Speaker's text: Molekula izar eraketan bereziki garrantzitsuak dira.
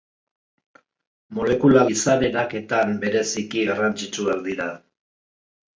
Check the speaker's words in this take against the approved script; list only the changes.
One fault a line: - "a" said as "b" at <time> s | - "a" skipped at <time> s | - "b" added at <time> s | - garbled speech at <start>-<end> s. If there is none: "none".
none